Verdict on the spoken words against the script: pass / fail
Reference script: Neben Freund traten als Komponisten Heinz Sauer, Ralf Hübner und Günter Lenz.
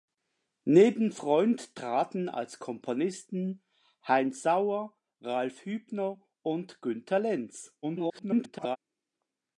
fail